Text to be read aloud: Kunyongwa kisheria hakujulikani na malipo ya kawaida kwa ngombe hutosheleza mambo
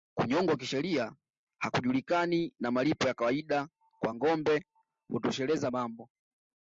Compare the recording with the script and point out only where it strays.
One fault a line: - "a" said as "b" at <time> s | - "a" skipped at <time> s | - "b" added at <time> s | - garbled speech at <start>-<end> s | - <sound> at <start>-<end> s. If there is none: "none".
none